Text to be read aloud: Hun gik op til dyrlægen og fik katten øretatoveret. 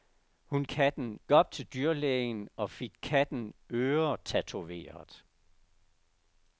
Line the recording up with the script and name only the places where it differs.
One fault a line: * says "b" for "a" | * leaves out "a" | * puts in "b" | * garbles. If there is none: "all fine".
* says "katten" for "gik"